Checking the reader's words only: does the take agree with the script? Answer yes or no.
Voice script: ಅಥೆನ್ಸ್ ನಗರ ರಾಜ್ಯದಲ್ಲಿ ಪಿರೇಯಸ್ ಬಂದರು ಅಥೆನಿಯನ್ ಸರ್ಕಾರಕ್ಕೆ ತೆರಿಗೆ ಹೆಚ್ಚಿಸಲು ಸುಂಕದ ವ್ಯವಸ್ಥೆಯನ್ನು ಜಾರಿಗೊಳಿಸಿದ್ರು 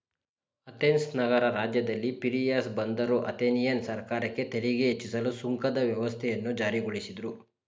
yes